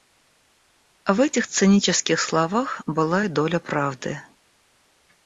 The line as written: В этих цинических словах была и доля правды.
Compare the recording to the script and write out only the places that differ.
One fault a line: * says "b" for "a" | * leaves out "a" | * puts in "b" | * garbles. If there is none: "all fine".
all fine